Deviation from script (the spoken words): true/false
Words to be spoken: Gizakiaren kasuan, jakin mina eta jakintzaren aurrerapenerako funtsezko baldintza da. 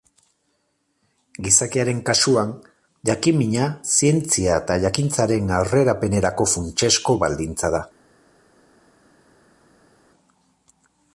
true